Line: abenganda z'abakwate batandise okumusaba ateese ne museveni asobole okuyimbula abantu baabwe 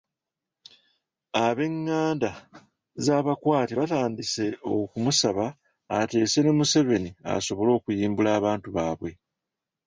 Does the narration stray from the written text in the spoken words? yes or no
no